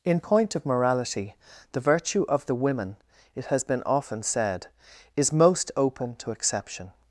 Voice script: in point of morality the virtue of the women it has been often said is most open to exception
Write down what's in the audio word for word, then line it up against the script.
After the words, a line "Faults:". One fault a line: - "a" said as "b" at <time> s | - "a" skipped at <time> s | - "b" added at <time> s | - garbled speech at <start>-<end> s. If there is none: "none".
in point of morality the virtue of the women it has been often said is most open to exception
Faults:
none